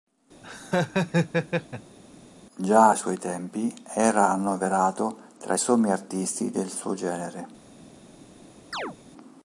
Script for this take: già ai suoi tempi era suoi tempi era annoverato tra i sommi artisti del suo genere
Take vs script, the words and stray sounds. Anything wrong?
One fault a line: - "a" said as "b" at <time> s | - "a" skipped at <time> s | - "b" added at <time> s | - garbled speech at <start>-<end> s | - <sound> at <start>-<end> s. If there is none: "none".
- laugh at 0.4-2.0 s
- "suoi tempi era" skipped at 4.3 s
- chirp at 8.7-9.0 s